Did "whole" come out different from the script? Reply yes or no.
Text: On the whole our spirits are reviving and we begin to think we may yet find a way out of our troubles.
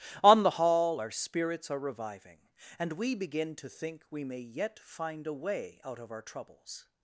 yes